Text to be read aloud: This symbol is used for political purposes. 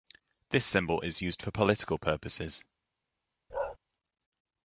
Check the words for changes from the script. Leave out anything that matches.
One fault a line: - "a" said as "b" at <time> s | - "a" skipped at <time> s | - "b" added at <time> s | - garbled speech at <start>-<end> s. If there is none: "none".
none